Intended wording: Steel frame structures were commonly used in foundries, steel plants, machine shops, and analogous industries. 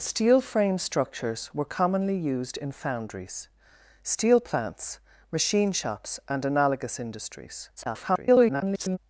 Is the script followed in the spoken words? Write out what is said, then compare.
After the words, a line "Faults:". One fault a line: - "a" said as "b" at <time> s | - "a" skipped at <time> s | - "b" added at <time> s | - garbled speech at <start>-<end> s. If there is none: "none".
Steel frame structures were commonly used in foundries, steel plants, machine shops, and analogous industries. [garbled]
Faults:
- garbled speech at 7.8-9.0 s